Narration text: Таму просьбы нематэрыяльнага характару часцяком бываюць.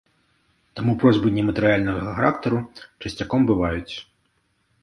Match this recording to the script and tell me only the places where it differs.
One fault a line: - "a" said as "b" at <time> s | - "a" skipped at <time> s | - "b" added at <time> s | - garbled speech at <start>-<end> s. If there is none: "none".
none